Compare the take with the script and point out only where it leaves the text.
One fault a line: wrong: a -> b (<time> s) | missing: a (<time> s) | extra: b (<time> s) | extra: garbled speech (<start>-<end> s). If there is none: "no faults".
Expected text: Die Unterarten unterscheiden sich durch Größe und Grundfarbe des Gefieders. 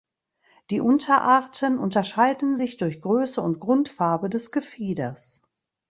no faults